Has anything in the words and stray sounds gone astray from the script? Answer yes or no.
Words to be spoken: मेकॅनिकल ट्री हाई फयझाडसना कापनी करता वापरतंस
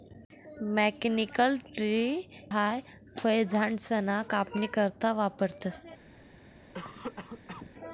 yes